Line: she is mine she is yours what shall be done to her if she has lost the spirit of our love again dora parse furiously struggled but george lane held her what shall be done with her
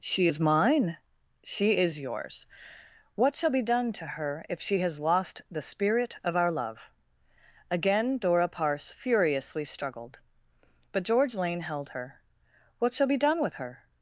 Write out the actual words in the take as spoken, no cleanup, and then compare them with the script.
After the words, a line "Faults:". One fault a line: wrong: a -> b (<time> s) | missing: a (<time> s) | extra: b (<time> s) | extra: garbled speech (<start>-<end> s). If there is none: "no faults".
she is mine she is yours what shall be done to her if she has lost the spirit of our love again dora parse furiously struggled but george lane held her what shall be done with her
Faults:
no faults